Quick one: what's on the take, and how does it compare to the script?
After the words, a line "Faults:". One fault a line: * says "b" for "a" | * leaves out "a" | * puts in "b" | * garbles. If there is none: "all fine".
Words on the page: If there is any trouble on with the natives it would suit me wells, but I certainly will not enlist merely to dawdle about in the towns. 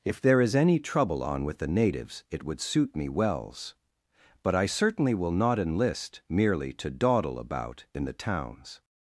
If there is any trouble on with the natives it would suit me wells, but I certainly will not enlist merely to dawdle about in the towns.
Faults:
all fine